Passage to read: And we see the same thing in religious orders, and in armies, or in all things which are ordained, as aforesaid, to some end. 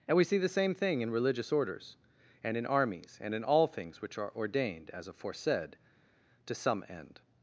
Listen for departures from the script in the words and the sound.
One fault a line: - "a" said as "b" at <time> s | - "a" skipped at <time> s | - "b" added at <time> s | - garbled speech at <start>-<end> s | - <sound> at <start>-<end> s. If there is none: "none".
- "or" said as "and" at 3.2 s